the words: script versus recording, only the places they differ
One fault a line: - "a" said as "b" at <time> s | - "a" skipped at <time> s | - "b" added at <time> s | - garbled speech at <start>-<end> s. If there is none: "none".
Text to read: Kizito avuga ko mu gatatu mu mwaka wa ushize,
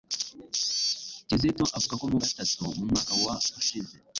none